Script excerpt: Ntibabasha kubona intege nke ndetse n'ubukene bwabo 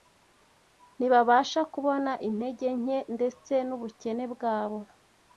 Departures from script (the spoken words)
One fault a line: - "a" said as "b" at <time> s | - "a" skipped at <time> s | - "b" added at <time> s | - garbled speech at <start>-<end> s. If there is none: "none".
none